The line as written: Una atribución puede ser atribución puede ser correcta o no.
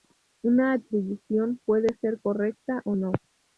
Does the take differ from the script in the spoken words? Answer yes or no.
yes